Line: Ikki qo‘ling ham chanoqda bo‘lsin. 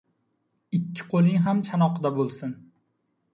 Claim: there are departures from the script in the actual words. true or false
false